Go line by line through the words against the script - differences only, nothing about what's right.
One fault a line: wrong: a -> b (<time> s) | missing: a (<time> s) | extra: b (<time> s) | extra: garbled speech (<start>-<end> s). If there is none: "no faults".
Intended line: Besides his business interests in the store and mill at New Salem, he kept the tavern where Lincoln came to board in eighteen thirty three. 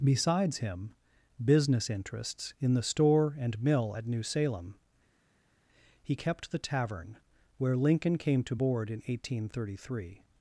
wrong: his -> him (0.6 s)